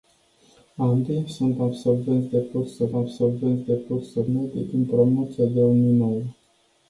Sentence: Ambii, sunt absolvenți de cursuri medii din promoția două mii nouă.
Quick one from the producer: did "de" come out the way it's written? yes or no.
yes